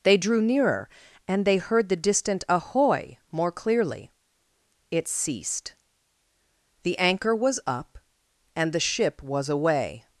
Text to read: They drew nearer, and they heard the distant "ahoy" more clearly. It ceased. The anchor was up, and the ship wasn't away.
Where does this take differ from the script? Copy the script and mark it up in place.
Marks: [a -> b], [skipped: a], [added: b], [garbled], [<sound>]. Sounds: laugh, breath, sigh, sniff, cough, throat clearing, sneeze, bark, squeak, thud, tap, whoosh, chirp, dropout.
They drew nearer, and they heard the distant "ahoy" more clearly. It ceased. The anchor was up, and the ship [wasn't -> was] away.